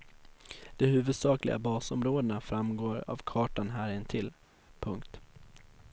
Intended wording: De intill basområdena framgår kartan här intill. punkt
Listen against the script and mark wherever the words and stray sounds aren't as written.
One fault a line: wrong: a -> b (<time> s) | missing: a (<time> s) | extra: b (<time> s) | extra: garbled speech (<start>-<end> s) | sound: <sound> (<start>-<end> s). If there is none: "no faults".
wrong: intill -> huvudsakliga (0.8 s)
extra: av (3.0 s)